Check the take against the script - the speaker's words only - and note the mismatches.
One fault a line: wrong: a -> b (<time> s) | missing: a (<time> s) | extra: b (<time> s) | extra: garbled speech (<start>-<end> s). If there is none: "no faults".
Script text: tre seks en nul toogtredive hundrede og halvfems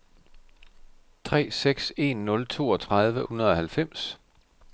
no faults